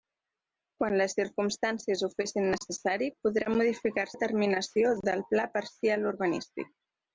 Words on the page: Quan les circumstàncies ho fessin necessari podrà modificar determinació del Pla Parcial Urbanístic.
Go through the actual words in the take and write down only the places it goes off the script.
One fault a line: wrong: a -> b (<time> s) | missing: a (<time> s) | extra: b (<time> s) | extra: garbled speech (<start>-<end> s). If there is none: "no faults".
no faults